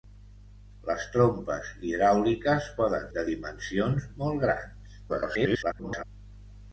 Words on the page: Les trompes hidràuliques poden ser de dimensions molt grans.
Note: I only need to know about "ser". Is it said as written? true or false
false